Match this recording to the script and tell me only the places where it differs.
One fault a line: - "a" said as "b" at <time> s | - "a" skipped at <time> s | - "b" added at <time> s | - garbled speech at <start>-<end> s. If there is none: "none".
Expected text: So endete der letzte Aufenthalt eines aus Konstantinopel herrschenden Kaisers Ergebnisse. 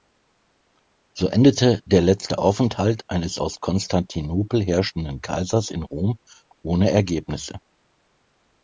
- "in Rom ohne" added at 5.7 s